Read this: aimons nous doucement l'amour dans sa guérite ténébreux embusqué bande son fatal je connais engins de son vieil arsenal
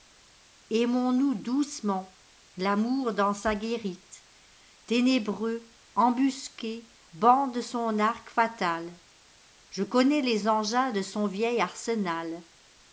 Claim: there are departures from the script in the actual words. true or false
true